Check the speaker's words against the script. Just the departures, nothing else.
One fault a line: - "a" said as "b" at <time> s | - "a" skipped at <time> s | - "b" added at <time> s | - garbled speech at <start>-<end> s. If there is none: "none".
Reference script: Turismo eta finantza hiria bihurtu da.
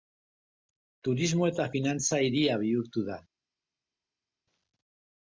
none